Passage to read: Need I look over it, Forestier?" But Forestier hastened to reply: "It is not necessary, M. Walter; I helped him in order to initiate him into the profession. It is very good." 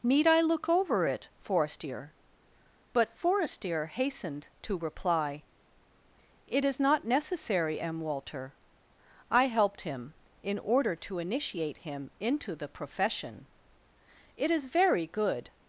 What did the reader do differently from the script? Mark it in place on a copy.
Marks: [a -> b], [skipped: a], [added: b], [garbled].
Need I look over it, Forestier?" But Forestier hastened to reply: "It is not necessary, M. Walter; I helped him in order to initiate him into the profession. It is very good."